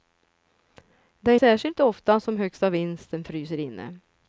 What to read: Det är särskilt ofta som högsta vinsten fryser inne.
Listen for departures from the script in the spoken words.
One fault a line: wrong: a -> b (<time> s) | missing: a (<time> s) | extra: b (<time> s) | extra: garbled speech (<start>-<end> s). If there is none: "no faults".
no faults